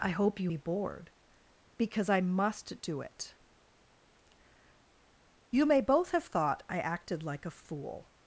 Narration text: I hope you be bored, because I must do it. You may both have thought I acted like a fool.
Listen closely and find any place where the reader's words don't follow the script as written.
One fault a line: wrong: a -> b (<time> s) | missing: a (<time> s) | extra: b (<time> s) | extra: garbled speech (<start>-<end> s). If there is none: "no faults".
no faults